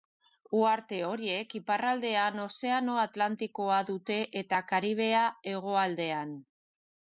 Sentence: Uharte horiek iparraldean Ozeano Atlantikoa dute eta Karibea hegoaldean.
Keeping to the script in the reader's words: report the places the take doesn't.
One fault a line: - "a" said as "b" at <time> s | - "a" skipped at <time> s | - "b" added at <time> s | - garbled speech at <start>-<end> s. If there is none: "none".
none